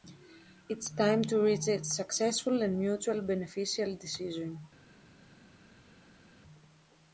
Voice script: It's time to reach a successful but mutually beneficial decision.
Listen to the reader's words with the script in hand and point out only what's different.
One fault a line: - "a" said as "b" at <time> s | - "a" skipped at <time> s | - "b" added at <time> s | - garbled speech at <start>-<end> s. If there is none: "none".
- "but" said as "and" at 2.6 s